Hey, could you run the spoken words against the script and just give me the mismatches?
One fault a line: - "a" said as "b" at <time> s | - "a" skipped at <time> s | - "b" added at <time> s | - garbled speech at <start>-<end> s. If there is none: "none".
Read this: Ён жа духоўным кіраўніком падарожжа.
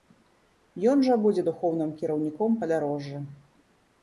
- "будзе" added at 1.2 s